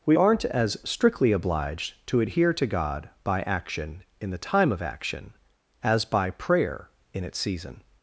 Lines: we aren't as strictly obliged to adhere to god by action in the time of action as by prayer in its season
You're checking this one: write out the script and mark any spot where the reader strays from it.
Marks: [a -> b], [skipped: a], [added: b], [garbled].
we aren't as strictly obliged to adhere to god by action in the time of action as by prayer in its season